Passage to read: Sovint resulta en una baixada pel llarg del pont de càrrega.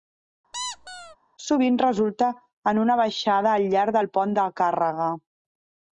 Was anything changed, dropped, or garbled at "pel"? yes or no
yes